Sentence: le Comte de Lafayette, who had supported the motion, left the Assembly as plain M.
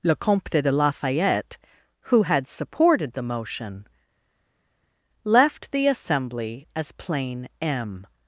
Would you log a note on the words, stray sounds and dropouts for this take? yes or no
no